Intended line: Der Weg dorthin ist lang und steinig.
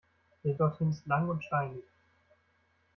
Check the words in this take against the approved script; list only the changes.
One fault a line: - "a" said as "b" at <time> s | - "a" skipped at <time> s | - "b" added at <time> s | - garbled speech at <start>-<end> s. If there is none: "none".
- "Weg" skipped at 0.6 s